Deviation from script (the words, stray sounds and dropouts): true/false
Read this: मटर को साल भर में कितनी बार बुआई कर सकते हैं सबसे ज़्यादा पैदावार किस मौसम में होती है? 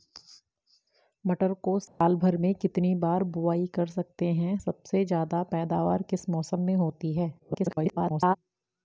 true